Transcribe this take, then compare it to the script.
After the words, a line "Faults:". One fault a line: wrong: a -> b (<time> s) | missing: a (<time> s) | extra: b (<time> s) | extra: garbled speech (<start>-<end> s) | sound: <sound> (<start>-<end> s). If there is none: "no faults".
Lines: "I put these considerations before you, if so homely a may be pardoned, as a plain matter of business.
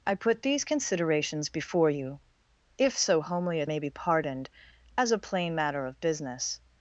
"I put these considerations before you, if so homely a may be pardoned, as a plain matter of business.
Faults:
no faults